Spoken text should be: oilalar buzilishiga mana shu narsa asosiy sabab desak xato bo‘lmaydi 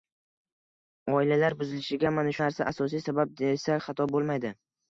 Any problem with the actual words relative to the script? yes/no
yes